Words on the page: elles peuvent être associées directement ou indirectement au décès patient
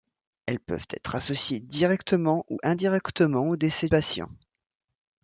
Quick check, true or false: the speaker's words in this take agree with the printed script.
true